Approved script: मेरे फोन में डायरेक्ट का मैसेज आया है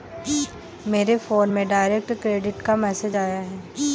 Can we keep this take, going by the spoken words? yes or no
no